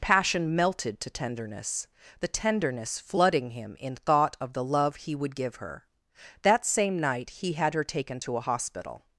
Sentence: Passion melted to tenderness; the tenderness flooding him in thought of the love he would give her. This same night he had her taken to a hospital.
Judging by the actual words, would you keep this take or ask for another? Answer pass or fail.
fail